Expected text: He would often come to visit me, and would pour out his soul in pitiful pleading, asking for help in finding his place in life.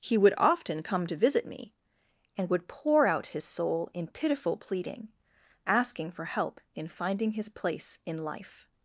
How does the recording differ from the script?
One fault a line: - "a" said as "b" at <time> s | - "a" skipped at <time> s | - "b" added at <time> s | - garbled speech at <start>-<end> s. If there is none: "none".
none